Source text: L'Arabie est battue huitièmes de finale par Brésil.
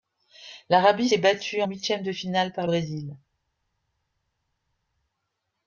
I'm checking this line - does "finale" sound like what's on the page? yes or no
yes